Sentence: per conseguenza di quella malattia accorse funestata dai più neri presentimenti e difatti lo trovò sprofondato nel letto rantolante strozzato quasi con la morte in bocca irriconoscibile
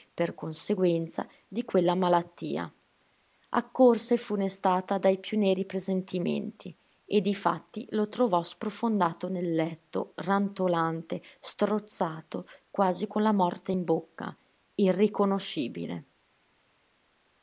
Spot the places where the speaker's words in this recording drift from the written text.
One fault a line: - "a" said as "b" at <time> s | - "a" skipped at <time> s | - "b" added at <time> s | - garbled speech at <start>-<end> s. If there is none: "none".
none